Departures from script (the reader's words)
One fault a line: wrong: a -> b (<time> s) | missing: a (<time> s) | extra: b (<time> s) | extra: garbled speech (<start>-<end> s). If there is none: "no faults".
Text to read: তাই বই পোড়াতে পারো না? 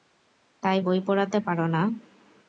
no faults